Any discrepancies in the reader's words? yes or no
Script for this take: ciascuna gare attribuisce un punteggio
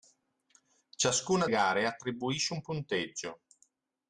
no